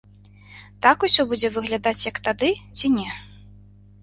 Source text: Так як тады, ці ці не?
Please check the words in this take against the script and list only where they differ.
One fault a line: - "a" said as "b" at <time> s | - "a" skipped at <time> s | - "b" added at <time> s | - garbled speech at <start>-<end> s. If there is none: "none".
- "усё будзе выглядаць" added at 1.1 s
- "ці" skipped at 2.9 s